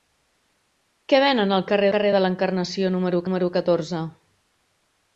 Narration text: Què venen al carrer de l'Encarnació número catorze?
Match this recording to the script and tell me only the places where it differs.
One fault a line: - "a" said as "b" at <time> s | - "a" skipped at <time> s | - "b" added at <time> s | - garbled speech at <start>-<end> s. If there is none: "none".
- "carrer" added at 1.9 s
- "número" added at 3.3 s